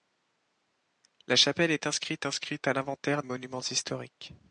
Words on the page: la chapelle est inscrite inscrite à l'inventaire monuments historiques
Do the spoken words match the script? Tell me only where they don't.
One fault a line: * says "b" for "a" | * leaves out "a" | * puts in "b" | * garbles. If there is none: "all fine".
all fine